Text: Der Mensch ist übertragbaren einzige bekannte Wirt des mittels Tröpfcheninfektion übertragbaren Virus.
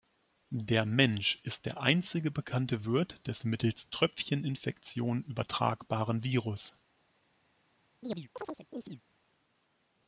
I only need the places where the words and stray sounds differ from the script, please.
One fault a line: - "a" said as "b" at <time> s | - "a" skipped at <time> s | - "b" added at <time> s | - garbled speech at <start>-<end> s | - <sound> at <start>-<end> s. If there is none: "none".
- "übertragbaren" said as "der" at 1.7 s
- chirp at 8.0-9.0 s